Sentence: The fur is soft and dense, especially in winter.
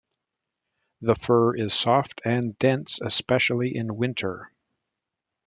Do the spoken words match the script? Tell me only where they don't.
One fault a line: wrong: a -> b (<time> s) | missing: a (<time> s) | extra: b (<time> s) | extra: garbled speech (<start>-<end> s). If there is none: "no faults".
no faults